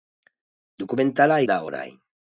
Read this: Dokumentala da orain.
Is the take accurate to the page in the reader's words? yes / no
yes